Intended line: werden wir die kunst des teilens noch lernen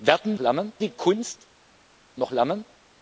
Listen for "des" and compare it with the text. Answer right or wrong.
wrong